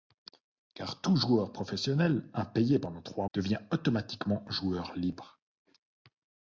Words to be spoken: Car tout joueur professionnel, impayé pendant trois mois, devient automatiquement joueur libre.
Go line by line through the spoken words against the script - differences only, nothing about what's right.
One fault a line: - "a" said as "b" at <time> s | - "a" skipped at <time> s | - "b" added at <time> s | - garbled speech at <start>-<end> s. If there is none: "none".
- "mois" skipped at 3.3 s